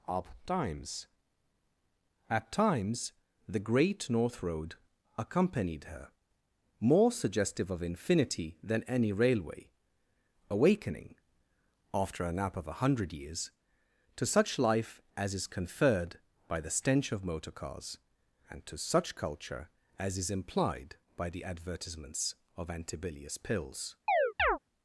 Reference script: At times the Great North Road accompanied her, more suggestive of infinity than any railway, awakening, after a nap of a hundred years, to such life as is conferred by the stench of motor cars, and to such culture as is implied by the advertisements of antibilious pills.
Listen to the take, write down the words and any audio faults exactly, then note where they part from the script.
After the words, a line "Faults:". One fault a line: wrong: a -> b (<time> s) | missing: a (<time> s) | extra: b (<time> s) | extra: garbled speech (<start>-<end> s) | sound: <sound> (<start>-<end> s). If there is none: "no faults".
up times At times the Great North Road accompanied her, more suggestive of infinity than any railway, awakening, after a nap of a hundred years, to such life as is conferred by the stench of motor cars, and to such culture as is implied by the advertisements of antibilious pills.
Faults:
extra: up times (0.1 s)
sound: chirp (24.1-24.6 s)